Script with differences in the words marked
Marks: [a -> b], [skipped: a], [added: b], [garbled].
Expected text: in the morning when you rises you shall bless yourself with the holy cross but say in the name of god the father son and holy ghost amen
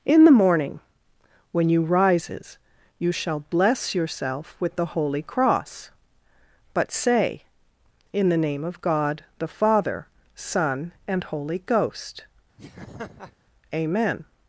in the morning when you rises you shall bless yourself with the holy cross but say in the name of god the father son and holy ghost amen